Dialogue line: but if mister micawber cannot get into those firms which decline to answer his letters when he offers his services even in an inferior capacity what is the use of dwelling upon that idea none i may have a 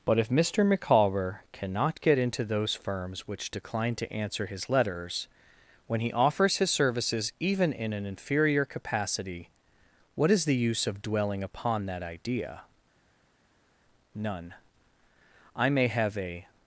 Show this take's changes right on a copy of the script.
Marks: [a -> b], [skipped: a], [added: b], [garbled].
but if mister micawber cannot get into those firms which decline to answer his letters when he offers his services even in an inferior capacity what is the use of dwelling upon that idea none i may have a